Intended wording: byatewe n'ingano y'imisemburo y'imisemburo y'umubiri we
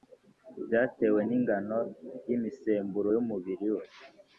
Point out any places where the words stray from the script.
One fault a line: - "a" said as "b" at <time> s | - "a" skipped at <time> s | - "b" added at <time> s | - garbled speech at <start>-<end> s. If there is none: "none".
- "y'imisemburo" skipped at 3.1 s